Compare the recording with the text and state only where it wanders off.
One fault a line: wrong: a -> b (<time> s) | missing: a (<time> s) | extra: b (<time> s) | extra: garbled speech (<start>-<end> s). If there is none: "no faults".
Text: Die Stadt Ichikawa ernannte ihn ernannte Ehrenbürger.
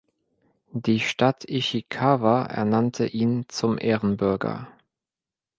wrong: ernannte -> zum (3.5 s)